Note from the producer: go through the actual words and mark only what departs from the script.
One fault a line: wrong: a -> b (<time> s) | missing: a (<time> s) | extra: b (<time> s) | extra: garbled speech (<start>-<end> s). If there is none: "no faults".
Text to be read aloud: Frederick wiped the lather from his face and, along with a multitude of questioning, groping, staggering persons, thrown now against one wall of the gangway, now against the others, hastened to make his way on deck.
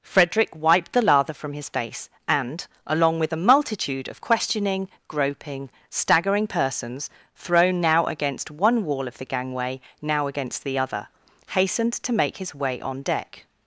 wrong: others -> other (10.8 s)